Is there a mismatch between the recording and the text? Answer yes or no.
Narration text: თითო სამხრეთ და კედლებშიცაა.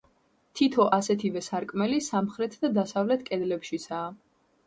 yes